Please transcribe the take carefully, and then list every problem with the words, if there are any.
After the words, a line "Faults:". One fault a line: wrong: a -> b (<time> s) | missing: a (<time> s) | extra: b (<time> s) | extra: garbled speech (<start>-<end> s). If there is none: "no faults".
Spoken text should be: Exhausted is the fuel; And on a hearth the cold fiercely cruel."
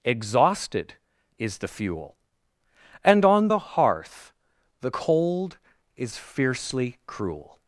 Exhausted is the fuel; And on the hearth the cold is fiercely cruel."
Faults:
wrong: a -> the (3.5 s)
extra: is (6.0 s)